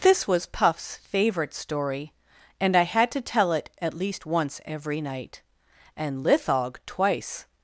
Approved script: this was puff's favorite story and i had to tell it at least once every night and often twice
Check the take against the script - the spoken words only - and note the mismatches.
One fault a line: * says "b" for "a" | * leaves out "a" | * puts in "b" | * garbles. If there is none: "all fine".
* says "lithog" for "often"